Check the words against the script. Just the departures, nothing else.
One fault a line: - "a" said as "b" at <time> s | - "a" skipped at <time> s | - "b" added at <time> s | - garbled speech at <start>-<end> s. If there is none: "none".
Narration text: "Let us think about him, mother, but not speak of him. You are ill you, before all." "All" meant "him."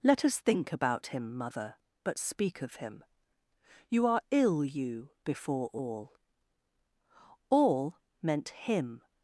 - "not" skipped at 2.2 s